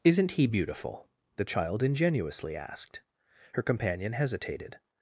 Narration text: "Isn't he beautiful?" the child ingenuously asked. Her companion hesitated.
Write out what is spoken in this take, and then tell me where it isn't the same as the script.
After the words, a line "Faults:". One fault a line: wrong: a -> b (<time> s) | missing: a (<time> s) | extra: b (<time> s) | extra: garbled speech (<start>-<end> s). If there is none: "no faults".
"Isn't he beautiful?" the child ingenuously asked. Her companion hesitated.
Faults:
no faults